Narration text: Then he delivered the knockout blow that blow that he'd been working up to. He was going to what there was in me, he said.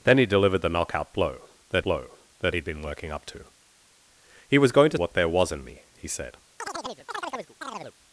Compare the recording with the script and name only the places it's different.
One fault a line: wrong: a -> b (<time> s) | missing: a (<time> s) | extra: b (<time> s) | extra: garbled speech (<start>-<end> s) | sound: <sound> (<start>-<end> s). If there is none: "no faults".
sound: chirp (6.6-7.9 s)